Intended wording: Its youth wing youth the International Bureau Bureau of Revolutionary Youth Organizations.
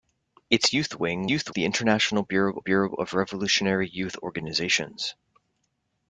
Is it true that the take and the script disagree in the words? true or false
false